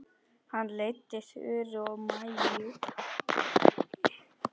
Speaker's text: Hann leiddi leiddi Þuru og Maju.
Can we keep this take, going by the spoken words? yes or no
no